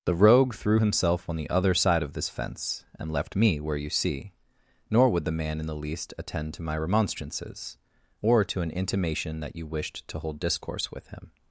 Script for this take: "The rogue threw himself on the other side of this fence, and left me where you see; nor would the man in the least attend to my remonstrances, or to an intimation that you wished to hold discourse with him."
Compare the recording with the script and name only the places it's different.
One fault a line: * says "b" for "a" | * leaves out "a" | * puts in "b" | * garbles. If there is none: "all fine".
all fine